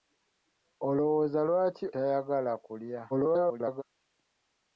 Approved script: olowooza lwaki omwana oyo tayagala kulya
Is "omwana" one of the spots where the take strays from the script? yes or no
yes